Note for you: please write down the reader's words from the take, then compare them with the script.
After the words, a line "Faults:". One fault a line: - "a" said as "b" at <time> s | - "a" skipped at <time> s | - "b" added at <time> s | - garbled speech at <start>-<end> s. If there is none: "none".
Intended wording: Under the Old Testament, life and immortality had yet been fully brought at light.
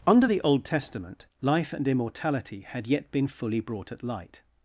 Under the Old Testament, life and immortality had yet been fully brought at light.
Faults:
none